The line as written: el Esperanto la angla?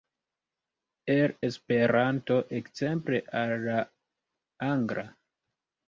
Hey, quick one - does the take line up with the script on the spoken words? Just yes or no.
no